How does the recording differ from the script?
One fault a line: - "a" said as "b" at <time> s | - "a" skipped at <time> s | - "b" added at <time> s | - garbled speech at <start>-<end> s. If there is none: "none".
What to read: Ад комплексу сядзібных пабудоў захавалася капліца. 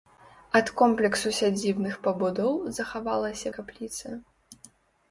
none